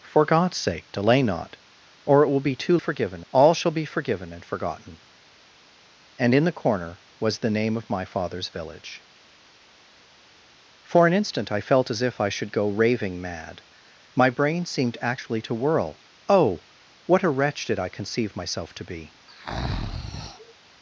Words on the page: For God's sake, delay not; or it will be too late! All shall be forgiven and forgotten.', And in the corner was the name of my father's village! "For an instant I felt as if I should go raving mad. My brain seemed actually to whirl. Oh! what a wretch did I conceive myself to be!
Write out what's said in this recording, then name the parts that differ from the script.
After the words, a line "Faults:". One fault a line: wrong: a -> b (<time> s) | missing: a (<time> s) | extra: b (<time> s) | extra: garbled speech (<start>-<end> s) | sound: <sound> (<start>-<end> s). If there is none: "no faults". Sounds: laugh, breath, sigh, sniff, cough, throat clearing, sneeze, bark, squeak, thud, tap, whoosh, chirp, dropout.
For God's sake, delay not; or it will be too forgiven! All shall be forgiven and forgotten.', And in the corner was the name of my father's village! "For an instant I felt as if I should go raving mad. My brain seemed actually to whirl. Oh! what a wretch did I conceive myself to be!
Faults:
wrong: late -> forgiven (2.8 s)
sound: breath (19.3-20.5 s)